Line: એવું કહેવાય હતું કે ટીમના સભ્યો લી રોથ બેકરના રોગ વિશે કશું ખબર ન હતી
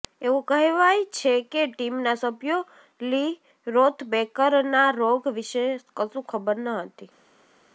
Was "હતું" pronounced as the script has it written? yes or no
no